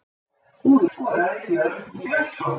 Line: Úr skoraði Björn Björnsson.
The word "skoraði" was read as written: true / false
true